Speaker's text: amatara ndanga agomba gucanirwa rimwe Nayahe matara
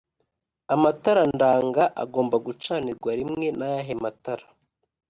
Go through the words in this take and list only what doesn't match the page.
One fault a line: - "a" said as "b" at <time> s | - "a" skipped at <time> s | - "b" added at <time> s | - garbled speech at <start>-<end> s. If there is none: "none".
none